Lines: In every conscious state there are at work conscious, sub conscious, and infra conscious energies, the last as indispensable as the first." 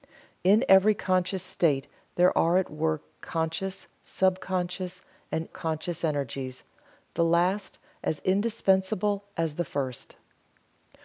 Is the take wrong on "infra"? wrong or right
wrong